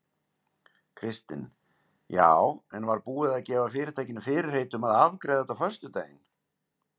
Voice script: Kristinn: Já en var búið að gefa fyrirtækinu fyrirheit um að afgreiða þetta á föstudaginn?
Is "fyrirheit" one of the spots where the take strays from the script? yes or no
no